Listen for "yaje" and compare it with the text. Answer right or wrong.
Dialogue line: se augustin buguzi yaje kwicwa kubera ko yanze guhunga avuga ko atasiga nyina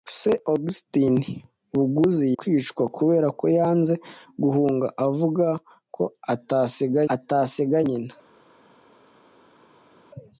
wrong